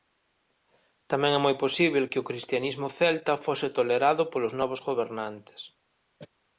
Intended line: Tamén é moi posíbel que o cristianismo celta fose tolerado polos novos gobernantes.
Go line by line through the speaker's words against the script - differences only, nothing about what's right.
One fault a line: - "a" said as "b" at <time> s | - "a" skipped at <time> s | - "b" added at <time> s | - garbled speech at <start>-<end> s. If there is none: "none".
none